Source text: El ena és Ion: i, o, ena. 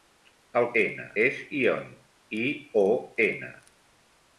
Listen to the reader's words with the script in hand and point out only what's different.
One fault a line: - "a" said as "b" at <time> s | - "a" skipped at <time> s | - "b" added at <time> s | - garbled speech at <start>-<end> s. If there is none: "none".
none